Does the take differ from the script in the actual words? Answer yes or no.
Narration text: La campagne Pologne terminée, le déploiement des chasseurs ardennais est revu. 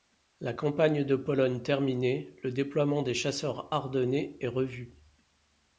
yes